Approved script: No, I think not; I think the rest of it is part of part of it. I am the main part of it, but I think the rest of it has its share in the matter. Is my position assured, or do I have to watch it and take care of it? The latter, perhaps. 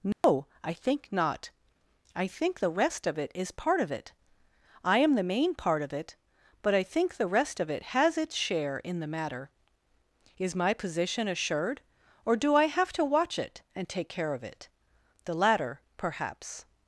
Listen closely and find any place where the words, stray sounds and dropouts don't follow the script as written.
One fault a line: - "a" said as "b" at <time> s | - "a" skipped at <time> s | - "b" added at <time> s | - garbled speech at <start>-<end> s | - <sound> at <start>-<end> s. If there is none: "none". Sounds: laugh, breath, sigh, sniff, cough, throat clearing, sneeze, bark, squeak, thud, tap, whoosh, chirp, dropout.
- dropout at 0.1-0.2 s
- "part of" skipped at 3.9 s